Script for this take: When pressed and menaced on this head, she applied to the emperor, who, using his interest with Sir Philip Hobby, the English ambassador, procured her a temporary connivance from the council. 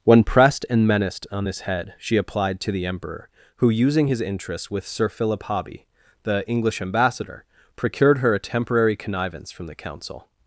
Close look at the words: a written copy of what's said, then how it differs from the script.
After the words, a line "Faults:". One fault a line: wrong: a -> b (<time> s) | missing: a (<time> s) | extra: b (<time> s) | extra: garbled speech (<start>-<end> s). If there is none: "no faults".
When pressed and menaced on this head, she applied to the emperor, who, using his interests with Sir Philip Hobby, the English ambassador, procured her a temporary connivance from the council.
Faults:
wrong: interest -> interests (4.2 s)